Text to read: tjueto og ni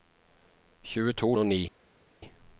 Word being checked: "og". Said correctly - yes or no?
yes